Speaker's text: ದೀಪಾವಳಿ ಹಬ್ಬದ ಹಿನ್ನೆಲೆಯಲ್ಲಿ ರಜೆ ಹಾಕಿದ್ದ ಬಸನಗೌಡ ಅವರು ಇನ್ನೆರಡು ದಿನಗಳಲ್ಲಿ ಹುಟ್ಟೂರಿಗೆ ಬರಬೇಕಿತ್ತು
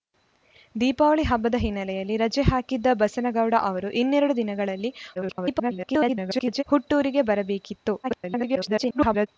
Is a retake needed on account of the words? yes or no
yes